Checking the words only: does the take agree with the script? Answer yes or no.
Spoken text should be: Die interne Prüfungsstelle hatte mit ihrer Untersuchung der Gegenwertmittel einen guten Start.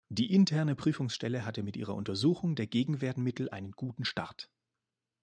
yes